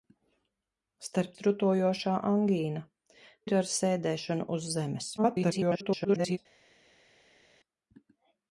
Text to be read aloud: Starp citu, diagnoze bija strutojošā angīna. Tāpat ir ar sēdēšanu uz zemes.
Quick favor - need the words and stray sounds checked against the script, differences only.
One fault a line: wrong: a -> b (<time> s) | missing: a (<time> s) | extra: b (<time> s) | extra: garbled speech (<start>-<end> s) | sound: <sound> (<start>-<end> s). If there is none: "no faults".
missing: citu diagnoze bija (1.4 s)
missing: Tāpat (2.8 s)
extra: garbled speech (5.2-6.4 s)